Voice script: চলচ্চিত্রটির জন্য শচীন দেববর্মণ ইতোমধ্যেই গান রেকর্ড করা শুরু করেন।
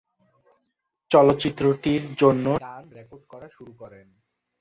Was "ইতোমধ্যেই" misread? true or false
true